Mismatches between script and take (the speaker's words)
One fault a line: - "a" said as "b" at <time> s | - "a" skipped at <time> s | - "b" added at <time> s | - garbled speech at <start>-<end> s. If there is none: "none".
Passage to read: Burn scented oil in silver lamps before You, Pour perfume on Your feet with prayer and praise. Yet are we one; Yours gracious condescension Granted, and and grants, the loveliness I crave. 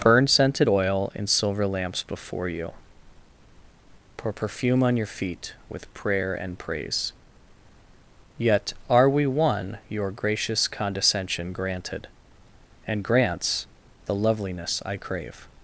- "Yours" said as "Your" at 9.9 s
- "and" skipped at 13.0 s